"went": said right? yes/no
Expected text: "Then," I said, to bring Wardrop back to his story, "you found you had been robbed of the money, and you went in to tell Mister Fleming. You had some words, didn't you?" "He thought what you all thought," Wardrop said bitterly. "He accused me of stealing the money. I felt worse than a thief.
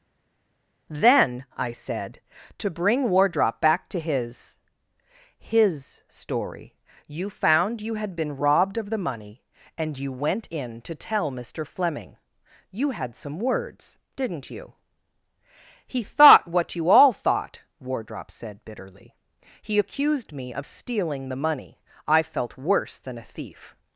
yes